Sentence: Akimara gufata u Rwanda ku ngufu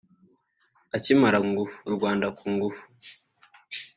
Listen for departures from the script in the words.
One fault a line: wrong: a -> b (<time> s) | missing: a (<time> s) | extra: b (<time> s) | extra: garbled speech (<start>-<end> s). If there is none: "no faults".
wrong: gufata -> ngufu (1.5 s)